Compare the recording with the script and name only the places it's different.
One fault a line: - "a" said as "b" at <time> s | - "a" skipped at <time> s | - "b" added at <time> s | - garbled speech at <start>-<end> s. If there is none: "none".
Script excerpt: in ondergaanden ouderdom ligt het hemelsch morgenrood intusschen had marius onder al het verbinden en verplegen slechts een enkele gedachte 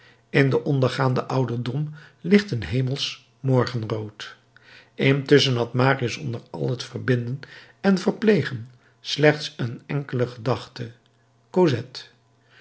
- "den" added at 0.5 s
- "het" said as "een" at 2.5 s